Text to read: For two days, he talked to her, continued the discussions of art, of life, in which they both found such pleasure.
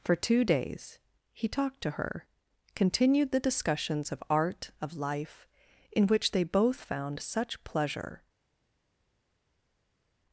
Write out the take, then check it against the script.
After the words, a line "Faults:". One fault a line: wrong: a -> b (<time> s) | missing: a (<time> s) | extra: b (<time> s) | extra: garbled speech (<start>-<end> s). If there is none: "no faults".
For two days, he talked to her, continued the discussions of art, of life, in which they both found such pleasure.
Faults:
no faults